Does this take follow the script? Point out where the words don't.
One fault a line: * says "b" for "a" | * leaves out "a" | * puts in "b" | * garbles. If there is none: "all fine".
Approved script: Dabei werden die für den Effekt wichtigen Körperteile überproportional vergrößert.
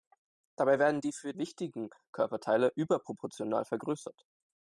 * leaves out "den Effekt"